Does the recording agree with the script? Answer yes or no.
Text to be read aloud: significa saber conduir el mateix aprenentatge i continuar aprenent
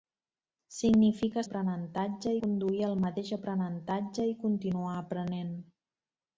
no